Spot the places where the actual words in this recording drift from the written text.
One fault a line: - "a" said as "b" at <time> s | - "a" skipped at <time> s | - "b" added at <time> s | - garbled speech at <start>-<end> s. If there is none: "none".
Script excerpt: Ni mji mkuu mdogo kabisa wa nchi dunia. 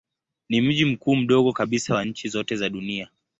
- "zote za" added at 2.3 s